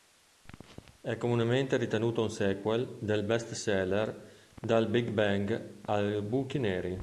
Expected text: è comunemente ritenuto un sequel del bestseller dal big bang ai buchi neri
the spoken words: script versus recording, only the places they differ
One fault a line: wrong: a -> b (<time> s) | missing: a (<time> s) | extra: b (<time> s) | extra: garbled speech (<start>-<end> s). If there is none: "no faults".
no faults